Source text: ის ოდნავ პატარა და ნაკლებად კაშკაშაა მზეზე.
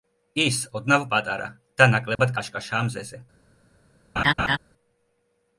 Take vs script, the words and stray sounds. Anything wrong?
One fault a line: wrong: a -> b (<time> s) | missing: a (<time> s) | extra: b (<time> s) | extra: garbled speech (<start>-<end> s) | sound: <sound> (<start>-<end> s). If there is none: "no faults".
sound: dropout (2.2-2.2 s)
sound: laugh (4.2-4.6 s)